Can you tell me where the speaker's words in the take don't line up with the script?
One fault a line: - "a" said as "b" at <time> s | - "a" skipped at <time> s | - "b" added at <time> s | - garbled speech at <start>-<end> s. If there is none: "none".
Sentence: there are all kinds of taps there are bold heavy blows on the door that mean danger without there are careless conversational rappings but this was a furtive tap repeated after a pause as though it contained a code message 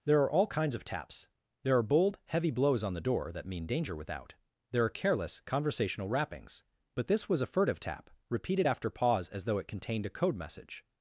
- "a" skipped at 8.9 s